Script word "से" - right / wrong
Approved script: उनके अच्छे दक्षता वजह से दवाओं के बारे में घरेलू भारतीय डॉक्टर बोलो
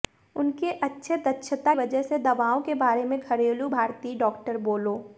right